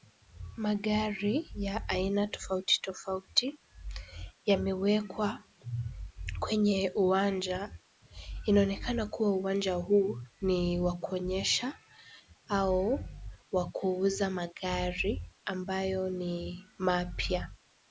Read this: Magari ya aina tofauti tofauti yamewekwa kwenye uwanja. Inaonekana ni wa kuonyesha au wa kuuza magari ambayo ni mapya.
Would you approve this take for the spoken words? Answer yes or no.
no